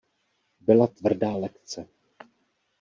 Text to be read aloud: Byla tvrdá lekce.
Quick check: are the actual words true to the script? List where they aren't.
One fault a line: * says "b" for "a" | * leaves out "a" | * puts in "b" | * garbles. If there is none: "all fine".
all fine